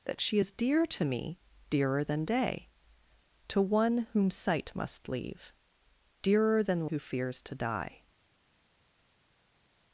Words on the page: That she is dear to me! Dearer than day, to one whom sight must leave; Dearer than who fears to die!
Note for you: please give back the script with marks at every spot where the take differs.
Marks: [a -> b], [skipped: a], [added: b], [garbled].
That she is dear to me! Dearer than day, to one whom sight must leave; Dearer than who fears to die!